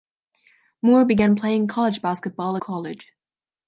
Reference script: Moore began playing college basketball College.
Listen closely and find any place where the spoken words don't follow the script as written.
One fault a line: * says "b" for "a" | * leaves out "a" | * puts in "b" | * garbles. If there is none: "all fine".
all fine